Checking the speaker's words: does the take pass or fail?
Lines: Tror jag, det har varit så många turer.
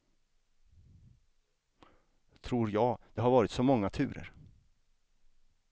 pass